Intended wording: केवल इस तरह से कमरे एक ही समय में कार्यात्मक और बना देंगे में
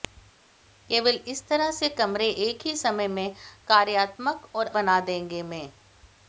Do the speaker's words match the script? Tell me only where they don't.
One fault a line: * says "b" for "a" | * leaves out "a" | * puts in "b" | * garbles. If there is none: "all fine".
all fine